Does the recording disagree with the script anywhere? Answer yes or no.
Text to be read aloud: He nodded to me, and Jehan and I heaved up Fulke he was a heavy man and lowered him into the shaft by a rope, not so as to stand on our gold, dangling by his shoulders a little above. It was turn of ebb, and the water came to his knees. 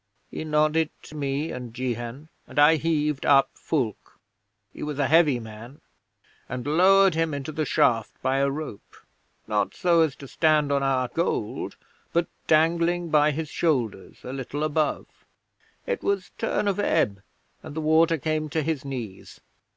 yes